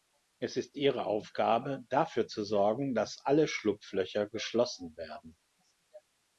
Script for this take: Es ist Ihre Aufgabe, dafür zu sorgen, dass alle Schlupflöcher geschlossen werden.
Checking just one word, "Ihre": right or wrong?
right